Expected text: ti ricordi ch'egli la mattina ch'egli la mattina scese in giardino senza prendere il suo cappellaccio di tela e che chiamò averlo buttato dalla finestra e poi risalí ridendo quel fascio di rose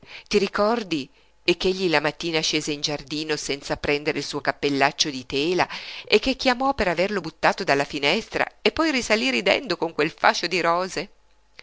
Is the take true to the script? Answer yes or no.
no